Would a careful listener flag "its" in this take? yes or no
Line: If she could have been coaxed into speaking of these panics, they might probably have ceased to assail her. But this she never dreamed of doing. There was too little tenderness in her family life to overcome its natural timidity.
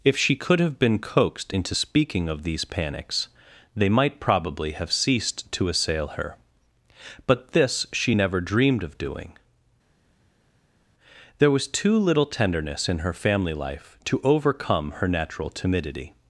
yes